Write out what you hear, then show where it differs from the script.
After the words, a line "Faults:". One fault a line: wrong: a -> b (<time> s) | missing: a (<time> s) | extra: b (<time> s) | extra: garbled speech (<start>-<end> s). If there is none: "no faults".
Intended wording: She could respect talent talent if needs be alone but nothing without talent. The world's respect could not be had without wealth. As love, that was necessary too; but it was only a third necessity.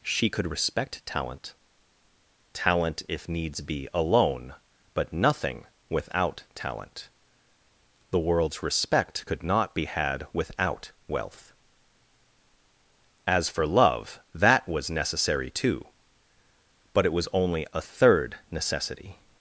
She could respect talent talent if needs be alone but nothing without talent. The world's respect could not be had without wealth. As for love, that was necessary too; but it was only a third necessity.
Faults:
extra: for (13.5 s)